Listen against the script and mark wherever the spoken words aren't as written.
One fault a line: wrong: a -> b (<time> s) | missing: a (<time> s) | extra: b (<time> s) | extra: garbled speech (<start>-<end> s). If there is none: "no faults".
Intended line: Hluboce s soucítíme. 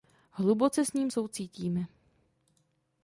extra: ním (0.9 s)